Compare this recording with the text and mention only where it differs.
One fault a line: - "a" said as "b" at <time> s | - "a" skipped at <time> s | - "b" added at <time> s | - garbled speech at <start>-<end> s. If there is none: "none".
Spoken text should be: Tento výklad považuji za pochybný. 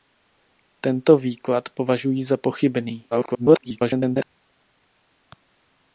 - garbled speech at 3.1-4.2 s